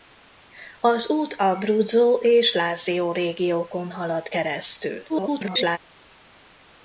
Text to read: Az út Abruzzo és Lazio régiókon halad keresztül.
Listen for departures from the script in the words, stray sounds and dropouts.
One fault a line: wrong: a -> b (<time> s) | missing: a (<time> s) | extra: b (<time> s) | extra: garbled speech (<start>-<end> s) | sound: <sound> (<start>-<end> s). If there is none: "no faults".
extra: garbled speech (5.1-5.8 s)